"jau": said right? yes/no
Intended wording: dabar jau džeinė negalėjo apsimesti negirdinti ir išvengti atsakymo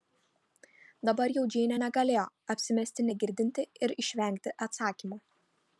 yes